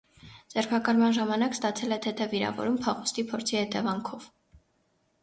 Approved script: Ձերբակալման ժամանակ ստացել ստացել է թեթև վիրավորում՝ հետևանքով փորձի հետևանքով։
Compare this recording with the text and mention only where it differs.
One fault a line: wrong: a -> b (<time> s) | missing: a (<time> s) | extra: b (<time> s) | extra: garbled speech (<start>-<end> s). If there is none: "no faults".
missing: ստացել (1.9 s)
wrong: հետևանքով -> փախուստի (2.9 s)